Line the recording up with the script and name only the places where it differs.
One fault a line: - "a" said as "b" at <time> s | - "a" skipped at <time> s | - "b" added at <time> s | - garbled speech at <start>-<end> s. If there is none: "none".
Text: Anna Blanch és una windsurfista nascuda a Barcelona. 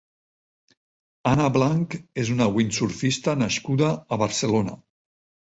none